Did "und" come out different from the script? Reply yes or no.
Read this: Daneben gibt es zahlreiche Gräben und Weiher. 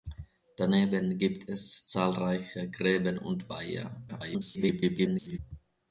no